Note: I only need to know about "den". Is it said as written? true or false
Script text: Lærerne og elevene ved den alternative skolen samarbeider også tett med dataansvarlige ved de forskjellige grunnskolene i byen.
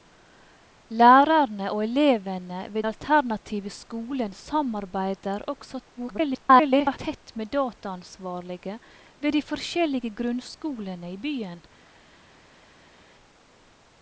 false